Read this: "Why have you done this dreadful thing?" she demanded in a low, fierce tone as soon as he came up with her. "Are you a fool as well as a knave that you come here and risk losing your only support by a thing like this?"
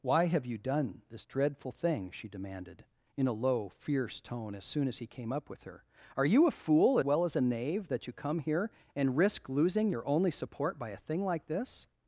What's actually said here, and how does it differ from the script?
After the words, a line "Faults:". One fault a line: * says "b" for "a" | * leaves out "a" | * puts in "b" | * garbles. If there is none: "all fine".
"Why have you done this dreadful thing?" she demanded in a low, fierce tone as soon as he came up with her. "Are you a fool well as a knave that you come here and risk losing your only support by a thing like this?"
Faults:
* leaves out "as"